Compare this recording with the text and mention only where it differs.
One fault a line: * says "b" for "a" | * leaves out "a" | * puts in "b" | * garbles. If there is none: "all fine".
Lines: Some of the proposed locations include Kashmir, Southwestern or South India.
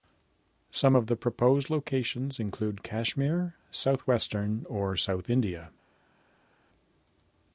all fine